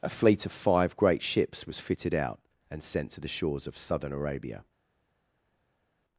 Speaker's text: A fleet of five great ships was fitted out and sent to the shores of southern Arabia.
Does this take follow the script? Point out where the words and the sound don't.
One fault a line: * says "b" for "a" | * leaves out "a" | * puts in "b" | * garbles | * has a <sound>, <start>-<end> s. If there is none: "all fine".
all fine